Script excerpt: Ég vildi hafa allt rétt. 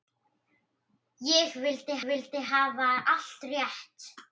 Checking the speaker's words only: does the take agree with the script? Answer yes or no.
no